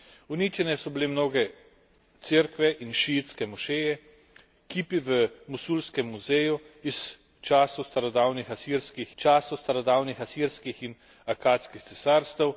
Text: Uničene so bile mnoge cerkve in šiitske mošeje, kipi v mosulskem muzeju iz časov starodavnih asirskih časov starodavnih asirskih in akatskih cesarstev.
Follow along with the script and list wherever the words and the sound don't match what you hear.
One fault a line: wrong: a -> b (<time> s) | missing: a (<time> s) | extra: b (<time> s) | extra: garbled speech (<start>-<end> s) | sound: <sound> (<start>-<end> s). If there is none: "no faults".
no faults